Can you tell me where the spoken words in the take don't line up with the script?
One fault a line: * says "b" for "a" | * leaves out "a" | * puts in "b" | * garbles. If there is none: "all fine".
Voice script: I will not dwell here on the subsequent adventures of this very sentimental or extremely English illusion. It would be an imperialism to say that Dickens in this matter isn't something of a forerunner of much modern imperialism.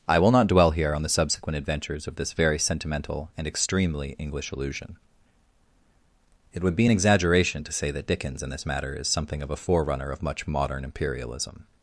* says "and" for "or"
* says "exaggeration" for "imperialism"
* says "is" for "isn't"